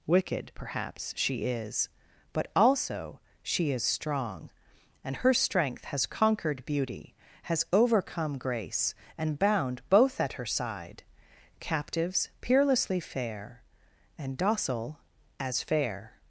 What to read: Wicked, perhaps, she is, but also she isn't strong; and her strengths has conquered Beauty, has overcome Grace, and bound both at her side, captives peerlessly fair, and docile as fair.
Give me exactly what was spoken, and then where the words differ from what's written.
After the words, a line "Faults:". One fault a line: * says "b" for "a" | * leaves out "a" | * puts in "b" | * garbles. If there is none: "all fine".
Wicked, perhaps, she is, but also she is strong; and her strength has conquered Beauty, has overcome Grace, and bound both at her side, captives peerlessly fair, and docile as fair.
Faults:
* says "is" for "isn't"
* says "strength" for "strengths"